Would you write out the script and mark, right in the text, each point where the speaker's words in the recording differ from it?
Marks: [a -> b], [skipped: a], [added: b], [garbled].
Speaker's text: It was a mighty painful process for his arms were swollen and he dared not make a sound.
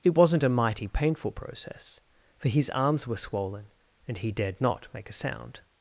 It [was -> wasn't] a mighty painful process for his arms were swollen and he dared not make a sound.